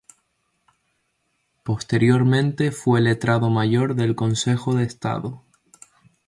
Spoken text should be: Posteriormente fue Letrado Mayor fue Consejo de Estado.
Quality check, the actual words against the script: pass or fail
fail